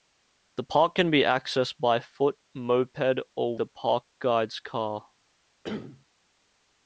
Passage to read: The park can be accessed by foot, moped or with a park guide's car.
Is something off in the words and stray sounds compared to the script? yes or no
yes